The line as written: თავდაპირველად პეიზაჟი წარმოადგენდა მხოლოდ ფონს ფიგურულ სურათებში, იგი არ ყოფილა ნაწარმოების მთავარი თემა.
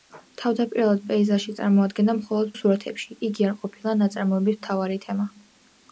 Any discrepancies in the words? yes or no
yes